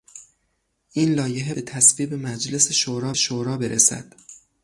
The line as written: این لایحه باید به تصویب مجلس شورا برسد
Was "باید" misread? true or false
true